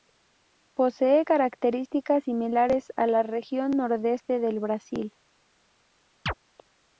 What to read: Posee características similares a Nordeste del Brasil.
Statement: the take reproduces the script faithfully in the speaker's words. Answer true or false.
false